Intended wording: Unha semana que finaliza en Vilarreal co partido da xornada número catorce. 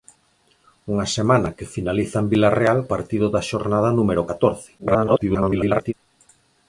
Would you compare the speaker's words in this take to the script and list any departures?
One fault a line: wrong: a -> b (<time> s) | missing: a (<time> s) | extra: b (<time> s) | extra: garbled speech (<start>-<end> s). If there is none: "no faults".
missing: co (2.8 s)
extra: garbled speech (4.8-5.9 s)